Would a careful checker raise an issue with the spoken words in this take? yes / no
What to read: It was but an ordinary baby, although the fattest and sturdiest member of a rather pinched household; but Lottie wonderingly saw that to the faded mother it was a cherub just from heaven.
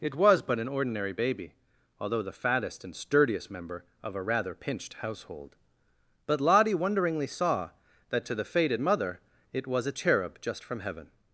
no